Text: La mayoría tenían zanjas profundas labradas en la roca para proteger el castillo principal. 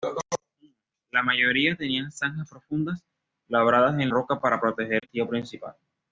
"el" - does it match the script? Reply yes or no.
no